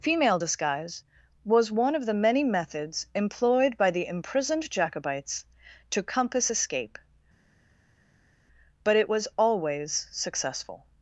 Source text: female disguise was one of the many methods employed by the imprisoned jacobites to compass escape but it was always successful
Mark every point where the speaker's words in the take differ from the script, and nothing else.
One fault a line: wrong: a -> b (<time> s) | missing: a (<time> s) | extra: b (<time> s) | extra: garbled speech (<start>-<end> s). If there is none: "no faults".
no faults